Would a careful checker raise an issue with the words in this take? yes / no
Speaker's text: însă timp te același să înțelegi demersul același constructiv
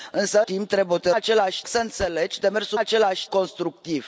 no